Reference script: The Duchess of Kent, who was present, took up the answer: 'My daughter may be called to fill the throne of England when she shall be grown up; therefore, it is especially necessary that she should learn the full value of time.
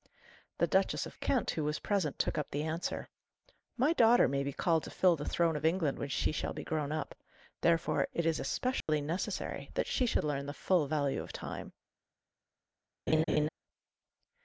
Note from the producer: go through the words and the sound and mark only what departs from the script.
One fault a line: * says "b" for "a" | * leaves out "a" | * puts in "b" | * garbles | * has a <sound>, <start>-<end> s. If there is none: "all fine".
* has a dropout, 8.8-8.9 s
* has a laugh, 13.1-13.5 s